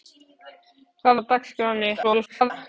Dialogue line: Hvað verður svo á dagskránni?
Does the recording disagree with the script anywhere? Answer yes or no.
yes